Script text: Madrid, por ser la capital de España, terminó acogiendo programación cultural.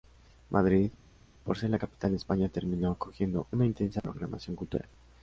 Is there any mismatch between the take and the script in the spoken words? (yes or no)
yes